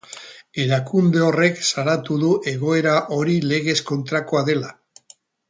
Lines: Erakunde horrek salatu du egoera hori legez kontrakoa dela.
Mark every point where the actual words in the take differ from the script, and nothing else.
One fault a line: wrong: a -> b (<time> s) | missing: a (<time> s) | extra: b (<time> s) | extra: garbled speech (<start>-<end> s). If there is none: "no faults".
no faults